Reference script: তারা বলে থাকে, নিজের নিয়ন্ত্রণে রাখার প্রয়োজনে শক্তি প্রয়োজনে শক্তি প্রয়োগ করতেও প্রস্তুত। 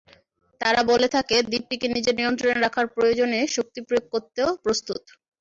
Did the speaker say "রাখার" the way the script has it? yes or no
yes